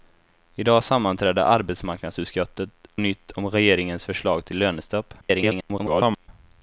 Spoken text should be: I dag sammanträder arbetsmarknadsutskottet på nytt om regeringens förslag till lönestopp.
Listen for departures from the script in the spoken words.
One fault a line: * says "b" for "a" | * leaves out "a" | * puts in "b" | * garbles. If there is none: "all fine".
* leaves out "på"
* garbles